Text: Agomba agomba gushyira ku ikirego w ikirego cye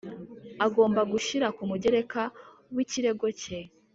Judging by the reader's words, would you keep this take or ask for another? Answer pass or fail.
fail